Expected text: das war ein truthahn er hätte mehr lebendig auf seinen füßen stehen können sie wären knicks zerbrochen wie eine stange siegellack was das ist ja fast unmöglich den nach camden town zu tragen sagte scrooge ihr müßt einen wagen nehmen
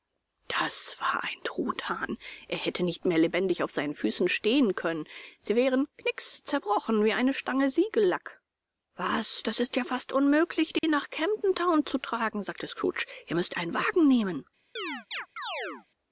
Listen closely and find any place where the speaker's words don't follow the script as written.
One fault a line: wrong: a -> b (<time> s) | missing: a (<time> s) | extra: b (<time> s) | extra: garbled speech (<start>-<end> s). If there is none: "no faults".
extra: nicht (2.8 s)